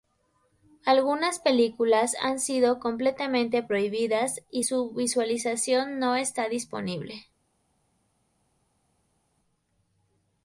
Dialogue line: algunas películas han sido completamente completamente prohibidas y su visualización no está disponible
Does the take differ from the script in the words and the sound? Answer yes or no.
yes